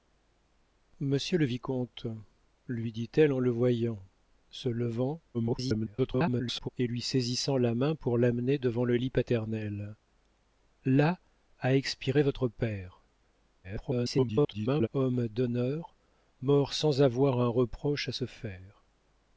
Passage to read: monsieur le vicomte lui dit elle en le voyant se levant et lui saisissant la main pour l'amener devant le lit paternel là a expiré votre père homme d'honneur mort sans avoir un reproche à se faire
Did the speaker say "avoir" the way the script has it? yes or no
yes